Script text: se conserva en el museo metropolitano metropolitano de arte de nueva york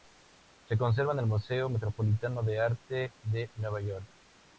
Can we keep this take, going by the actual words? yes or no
no